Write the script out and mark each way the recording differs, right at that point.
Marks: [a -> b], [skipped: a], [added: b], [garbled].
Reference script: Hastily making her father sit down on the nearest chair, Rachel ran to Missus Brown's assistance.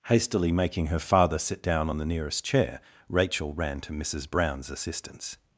Hastily making her father sit down on the nearest chair, Rachel ran to Missus Brown's assistance.